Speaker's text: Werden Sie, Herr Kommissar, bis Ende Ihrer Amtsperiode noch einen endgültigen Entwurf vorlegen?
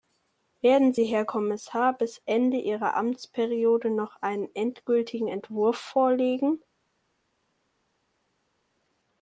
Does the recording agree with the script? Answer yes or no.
yes